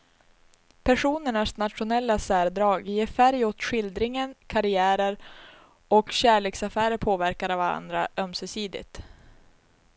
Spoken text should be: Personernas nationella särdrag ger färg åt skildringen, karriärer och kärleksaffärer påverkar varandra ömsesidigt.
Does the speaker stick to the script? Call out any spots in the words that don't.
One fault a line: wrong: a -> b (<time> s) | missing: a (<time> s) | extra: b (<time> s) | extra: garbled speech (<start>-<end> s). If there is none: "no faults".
no faults